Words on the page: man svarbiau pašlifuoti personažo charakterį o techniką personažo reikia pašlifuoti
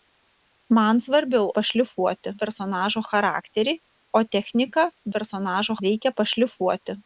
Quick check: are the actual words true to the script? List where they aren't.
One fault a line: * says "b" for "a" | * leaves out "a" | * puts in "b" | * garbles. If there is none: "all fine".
all fine